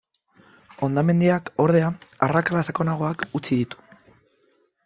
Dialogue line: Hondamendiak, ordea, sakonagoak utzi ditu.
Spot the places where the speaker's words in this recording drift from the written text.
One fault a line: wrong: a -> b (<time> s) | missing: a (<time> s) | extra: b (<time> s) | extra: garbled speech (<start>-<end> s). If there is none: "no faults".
extra: arrakala (2.3 s)